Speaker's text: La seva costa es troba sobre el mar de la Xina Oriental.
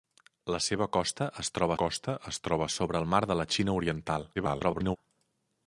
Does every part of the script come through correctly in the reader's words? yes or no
no